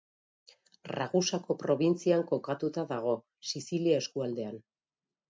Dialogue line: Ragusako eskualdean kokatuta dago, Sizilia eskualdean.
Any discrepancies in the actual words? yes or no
yes